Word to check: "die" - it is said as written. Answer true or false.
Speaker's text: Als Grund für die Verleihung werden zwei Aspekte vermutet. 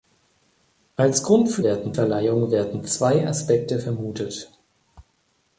false